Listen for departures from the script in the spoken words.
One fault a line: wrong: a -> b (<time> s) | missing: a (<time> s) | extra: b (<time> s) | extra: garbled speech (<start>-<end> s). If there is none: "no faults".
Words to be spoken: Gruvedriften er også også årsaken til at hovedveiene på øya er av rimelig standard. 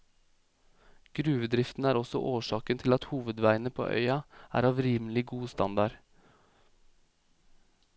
missing: også (2.2 s)
extra: god (5.3 s)